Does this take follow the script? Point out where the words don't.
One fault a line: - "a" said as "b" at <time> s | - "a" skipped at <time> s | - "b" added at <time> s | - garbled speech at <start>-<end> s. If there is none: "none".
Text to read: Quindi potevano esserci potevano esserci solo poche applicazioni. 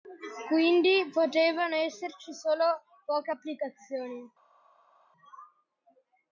- "potevano esserci" skipped at 2.3 s